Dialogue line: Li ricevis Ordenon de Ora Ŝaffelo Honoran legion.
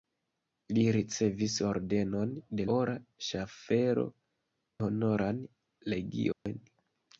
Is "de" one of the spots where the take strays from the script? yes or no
no